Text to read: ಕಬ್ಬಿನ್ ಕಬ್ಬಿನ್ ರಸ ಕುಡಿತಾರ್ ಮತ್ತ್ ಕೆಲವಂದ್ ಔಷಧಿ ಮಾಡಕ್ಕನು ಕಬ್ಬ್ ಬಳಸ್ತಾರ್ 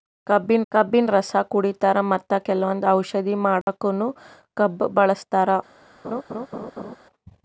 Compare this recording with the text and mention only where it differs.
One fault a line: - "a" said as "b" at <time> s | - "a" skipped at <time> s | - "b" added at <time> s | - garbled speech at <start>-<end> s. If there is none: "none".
none